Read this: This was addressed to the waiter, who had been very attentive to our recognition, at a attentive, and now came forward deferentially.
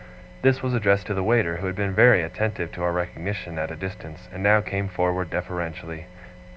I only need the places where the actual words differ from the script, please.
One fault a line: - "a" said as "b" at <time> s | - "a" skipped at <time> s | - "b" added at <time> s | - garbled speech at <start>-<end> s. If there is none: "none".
- "attentive" said as "distance" at 3.8 s